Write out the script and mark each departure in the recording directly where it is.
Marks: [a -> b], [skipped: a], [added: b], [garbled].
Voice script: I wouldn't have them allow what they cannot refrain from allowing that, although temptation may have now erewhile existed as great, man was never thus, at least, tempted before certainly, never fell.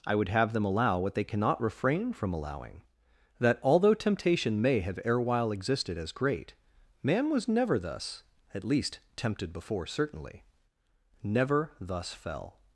I [wouldn't -> would] have them allow what they cannot refrain from allowing that, although temptation may have [skipped: now] erewhile existed as great, man was never thus, at least, tempted before certainly, never [added: thus] fell.